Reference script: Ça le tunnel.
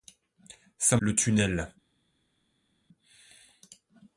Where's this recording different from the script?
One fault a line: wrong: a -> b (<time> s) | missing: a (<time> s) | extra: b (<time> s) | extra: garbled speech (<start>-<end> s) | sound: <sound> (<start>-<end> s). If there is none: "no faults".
no faults